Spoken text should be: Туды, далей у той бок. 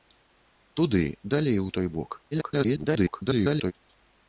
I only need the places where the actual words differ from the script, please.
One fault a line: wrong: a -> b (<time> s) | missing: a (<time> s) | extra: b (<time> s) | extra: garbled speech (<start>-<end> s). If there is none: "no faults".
extra: garbled speech (2.3-3.7 s)